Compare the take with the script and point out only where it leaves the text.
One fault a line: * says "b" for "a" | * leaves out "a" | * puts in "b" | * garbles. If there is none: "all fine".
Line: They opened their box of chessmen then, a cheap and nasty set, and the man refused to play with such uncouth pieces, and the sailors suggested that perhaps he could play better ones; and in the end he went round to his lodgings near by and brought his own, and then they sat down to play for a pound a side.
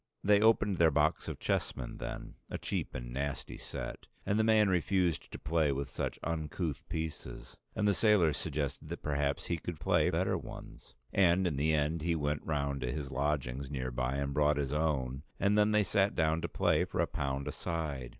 all fine